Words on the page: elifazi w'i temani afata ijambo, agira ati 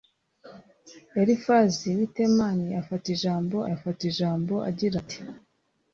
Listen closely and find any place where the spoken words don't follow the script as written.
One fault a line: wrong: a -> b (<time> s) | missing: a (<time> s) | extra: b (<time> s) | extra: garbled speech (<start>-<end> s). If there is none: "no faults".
extra: afata ijambo (3.8 s)